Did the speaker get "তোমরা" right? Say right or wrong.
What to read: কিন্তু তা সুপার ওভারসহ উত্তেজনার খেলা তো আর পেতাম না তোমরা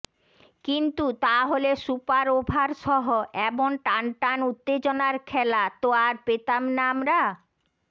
wrong